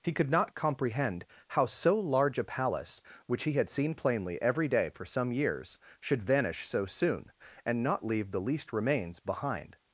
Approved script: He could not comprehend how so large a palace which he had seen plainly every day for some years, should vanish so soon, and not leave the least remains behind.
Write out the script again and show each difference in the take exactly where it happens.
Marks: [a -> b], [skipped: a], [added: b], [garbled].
He could not comprehend how so large a palace which he had seen plainly every day for some years, should vanish so soon, and not leave the least remains behind.